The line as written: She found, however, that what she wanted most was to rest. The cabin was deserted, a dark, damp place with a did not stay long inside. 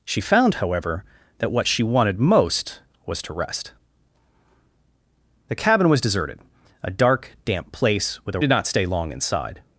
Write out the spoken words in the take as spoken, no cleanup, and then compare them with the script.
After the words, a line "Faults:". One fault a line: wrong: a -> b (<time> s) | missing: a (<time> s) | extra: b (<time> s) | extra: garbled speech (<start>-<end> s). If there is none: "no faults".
She found, however, that what she wanted most was to rest. The cabin was deserted, a dark, damp place with a did not stay long inside.
Faults:
no faults